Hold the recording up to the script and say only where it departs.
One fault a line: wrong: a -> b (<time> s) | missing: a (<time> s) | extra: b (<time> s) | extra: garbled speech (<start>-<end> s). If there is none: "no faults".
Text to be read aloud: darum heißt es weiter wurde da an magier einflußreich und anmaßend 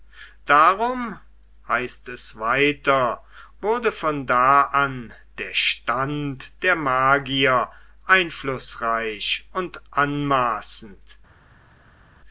extra: von (3.9 s)
extra: der stand der (5.4 s)